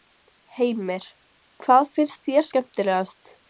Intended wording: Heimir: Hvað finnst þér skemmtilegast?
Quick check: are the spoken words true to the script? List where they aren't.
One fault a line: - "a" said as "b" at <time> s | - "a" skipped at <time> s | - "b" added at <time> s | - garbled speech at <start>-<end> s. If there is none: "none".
none